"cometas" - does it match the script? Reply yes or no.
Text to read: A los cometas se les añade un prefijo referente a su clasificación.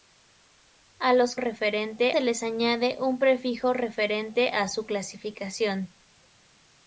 no